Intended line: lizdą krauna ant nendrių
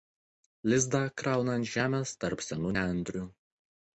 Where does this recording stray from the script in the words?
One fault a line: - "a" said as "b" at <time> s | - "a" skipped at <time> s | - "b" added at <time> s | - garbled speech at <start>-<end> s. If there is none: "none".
- "žemės tarp senų" added at 1.7 s